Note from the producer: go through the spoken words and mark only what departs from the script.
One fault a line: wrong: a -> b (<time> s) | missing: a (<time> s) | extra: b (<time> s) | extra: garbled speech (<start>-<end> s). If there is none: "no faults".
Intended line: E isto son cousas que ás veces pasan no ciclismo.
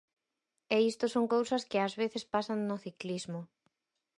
no faults